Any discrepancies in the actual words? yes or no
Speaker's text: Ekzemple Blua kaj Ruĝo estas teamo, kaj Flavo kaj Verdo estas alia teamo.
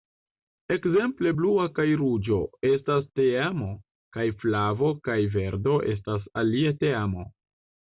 no